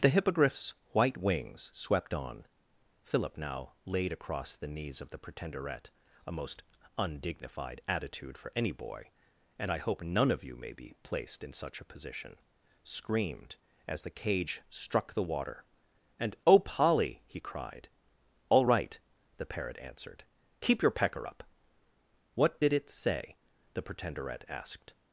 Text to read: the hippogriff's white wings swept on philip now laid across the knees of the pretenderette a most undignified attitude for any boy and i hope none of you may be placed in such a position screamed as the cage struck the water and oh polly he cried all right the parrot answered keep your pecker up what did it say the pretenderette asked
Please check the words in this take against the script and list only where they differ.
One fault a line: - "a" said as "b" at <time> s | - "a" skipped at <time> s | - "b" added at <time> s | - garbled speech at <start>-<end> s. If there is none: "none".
none